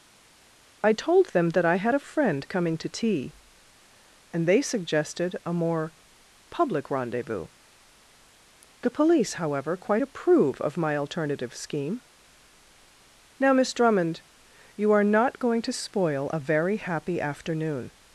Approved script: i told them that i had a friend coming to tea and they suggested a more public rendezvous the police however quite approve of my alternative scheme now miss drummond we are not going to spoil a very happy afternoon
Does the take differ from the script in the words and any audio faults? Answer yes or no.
yes